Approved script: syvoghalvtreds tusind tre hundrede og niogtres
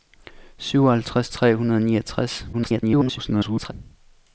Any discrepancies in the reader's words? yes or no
yes